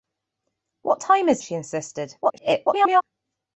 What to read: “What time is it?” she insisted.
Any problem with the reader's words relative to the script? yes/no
yes